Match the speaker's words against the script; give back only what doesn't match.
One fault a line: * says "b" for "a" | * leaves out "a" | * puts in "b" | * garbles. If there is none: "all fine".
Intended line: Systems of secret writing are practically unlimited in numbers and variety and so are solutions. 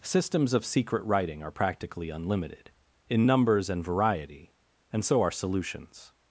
all fine